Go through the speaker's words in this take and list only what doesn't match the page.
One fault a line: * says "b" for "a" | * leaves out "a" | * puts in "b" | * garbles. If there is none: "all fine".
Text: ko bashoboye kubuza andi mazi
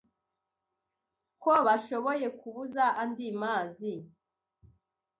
all fine